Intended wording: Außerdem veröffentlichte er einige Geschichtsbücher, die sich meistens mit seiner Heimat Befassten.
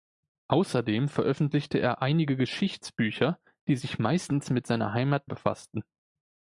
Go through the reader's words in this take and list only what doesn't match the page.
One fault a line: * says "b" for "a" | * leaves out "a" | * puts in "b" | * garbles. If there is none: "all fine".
all fine